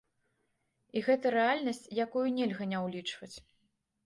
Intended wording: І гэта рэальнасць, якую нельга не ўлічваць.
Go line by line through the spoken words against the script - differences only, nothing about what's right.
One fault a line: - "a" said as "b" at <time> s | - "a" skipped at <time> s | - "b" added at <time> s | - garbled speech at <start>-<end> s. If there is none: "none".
none